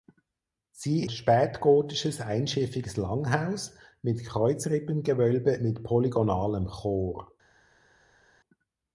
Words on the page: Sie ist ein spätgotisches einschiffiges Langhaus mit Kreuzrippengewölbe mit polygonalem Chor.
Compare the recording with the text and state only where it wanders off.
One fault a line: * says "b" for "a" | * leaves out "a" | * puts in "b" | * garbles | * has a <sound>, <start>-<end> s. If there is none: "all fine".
* leaves out "ist ein"